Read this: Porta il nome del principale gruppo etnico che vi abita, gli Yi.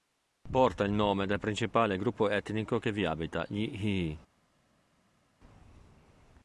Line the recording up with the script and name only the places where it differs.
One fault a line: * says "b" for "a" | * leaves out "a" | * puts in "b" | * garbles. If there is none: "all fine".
all fine